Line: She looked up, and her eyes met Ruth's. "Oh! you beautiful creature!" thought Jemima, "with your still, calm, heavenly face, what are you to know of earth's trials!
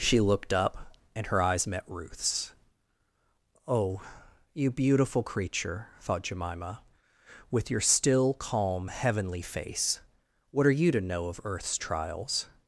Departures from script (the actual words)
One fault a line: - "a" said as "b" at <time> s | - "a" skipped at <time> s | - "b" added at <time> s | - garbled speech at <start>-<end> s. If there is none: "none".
none